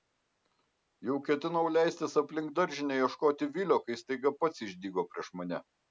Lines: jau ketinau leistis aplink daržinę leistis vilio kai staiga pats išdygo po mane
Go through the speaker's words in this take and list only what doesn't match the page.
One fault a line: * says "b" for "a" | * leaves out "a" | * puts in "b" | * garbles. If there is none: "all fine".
* says "ieškoti" for "leistis"
* says "prieš" for "po"